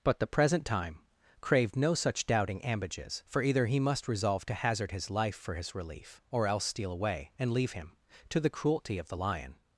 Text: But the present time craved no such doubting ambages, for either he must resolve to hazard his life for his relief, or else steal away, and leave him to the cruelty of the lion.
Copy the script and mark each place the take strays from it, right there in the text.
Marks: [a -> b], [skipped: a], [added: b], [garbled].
But the present time craved no such doubting ambages, for either he must resolve to hazard his life for his relief, or else steal away, and leave him to the cruelty of the lion.